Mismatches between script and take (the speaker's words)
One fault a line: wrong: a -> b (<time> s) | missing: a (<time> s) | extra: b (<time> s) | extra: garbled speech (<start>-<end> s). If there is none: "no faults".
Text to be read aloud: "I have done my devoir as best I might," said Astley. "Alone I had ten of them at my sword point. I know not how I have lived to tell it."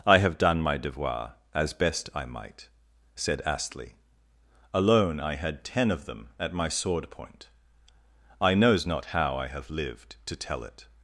wrong: know -> knows (8.6 s)